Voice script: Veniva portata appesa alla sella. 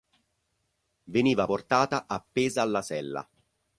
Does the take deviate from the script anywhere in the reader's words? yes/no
no